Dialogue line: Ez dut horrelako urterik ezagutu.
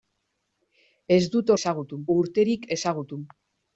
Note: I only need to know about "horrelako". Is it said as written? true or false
false